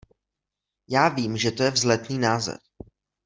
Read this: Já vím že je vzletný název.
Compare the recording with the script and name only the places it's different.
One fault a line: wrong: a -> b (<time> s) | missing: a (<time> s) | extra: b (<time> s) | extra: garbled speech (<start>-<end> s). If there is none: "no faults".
extra: to (1.5 s)